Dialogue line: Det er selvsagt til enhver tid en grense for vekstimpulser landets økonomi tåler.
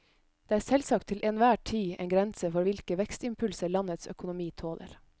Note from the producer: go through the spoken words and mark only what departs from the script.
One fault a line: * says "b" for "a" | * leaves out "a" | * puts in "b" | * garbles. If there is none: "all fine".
* puts in "hvilke"